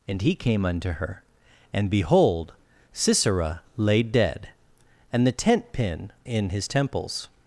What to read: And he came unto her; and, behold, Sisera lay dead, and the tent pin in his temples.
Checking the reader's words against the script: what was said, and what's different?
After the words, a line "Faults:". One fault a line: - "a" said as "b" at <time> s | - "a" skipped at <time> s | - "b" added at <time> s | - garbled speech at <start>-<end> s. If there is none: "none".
And he came unto her; and, behold, Sisera lay dead, and the tent pin in his temples.
Faults:
none